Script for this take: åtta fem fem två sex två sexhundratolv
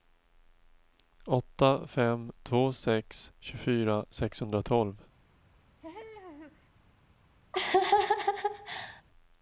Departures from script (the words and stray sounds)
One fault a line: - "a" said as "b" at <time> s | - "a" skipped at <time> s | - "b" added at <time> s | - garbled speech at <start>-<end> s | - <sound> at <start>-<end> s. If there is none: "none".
- "fem" skipped at 2.3 s
- "två" said as "tjugofyra" at 3.4 s
- laugh at 5.8-6.7 s
- laugh at 7.5-9.0 s